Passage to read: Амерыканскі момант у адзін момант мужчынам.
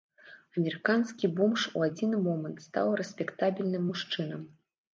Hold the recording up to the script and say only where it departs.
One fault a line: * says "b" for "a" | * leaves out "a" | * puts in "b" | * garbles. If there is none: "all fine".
* says "бомж" for "момант"
* puts in "стаў рэспектабельным"